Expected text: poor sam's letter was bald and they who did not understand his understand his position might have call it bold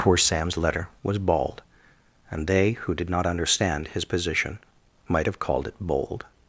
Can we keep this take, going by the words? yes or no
no